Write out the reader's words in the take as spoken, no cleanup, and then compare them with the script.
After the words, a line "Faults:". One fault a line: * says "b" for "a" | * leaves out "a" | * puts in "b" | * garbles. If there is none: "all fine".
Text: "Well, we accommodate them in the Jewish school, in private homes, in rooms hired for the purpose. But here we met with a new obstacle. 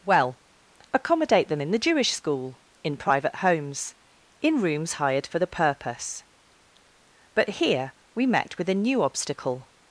"Well, accommodate them in the Jewish school, in private homes, in rooms hired for the purpose. But here we met with a new obstacle.
Faults:
* leaves out "we"